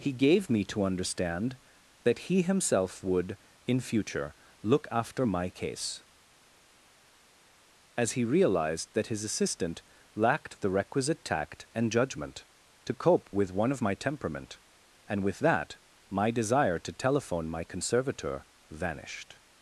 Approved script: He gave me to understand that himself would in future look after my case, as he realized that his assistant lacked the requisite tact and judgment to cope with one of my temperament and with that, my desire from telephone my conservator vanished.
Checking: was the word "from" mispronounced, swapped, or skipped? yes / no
yes